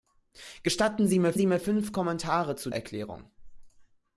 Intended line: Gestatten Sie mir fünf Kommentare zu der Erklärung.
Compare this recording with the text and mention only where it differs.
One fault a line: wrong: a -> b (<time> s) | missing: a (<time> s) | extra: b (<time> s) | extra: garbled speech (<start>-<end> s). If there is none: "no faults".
extra: Sie mir (1.3 s)
missing: der (2.7 s)